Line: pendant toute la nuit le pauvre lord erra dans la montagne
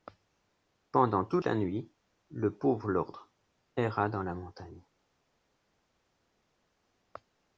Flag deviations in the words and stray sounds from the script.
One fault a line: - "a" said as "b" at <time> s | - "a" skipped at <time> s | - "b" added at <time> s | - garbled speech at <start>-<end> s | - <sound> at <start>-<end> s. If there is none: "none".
none